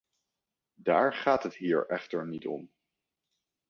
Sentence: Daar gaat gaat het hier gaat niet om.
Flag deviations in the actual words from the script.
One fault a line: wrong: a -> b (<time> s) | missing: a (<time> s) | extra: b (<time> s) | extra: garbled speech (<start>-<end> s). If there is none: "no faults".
missing: gaat (1.4 s)
wrong: gaat -> echter (1.9 s)